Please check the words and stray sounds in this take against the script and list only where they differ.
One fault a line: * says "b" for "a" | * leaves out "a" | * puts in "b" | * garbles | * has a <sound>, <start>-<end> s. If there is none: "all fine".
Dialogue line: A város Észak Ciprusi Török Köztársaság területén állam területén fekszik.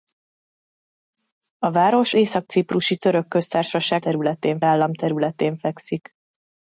all fine